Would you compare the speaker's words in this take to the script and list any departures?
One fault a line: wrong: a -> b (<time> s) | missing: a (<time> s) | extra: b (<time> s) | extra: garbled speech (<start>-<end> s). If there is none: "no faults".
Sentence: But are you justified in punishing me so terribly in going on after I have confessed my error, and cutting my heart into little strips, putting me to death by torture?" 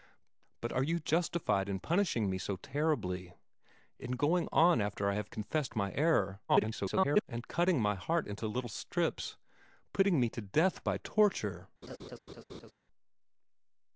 extra: garbled speech (6.5-7.2 s)